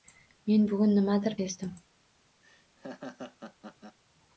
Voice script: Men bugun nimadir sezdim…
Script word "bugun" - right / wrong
right